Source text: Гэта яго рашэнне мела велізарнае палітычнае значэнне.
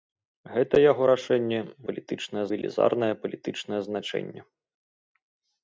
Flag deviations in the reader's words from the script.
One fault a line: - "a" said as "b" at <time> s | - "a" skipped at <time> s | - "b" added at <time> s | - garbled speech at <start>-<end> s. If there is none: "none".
- "мела" said as "палітычнае" at 1.9 s